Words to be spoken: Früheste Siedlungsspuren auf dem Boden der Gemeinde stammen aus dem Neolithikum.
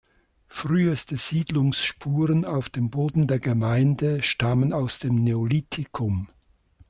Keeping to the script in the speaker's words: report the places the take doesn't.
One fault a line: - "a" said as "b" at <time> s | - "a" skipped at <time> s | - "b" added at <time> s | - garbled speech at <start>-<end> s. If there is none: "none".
none